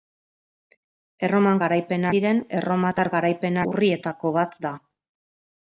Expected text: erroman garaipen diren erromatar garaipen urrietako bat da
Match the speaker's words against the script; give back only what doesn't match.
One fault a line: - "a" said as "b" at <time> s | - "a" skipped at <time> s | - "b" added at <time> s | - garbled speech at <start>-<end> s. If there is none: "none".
none